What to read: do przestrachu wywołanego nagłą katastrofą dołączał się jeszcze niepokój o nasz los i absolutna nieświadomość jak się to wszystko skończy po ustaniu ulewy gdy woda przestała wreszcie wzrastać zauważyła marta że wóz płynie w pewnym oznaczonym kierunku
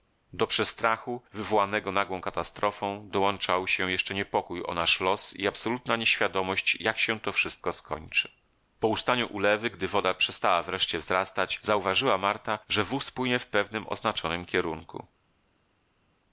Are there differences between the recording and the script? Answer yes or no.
no